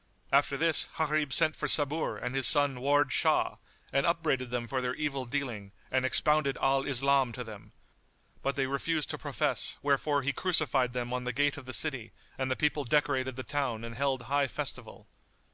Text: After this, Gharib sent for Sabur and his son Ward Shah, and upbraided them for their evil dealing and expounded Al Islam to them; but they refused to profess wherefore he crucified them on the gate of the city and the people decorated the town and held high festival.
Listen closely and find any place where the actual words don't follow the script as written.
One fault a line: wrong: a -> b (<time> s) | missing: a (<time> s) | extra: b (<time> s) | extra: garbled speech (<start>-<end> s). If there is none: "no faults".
no faults